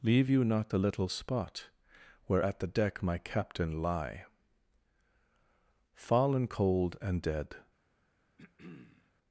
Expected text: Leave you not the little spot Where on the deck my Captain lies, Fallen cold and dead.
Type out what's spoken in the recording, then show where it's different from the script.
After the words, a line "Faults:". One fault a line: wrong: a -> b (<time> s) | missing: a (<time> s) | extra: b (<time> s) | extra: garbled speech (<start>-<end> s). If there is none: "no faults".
Leave you not the little spot Where at the deck my Captain lie, Fallen cold and dead.
Faults:
wrong: on -> at (2.4 s)
wrong: lies -> lie (3.8 s)